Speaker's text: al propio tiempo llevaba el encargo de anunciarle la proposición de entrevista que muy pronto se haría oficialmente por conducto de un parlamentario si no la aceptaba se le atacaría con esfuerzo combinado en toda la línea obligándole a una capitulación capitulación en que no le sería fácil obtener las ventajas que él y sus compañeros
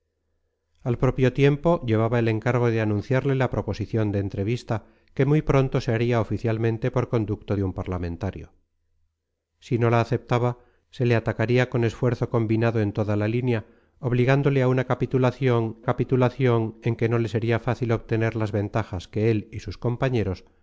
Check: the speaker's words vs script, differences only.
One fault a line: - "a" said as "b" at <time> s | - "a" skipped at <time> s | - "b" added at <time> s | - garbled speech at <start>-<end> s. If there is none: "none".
none